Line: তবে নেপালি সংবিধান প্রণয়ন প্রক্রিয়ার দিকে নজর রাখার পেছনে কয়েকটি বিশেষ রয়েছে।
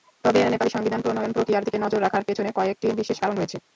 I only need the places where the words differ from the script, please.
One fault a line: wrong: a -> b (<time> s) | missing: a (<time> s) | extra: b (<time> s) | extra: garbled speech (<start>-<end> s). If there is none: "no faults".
extra: কারণ (3.2 s)